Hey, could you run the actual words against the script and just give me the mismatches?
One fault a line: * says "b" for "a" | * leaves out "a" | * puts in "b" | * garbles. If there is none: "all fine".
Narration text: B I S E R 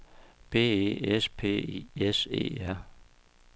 * puts in "E S P"